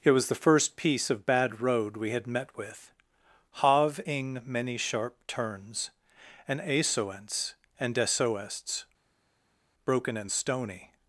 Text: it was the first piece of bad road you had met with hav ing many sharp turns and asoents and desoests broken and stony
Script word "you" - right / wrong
wrong